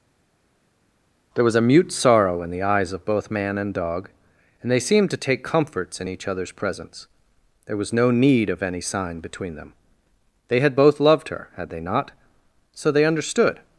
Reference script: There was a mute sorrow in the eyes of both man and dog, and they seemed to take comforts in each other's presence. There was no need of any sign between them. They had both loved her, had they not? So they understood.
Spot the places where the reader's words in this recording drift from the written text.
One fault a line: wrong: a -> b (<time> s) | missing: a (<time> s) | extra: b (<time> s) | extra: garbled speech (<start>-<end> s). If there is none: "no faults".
no faults